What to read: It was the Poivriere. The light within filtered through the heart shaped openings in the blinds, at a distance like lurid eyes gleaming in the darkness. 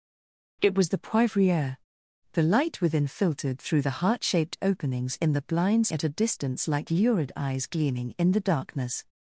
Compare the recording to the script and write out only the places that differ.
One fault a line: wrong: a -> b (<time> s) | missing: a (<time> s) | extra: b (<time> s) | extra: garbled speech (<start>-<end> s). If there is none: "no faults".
no faults